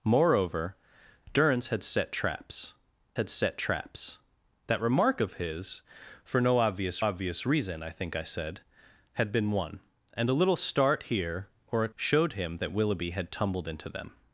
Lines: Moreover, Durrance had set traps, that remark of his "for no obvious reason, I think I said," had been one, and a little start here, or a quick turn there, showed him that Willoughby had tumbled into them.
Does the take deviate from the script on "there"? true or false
true